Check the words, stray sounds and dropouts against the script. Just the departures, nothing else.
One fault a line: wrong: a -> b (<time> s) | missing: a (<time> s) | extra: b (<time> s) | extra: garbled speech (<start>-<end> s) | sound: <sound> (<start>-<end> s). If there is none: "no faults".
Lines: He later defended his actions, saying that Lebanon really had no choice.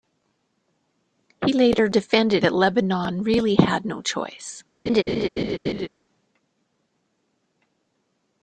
missing: his actions saying (2.5 s)
sound: laugh (4.9-5.9 s)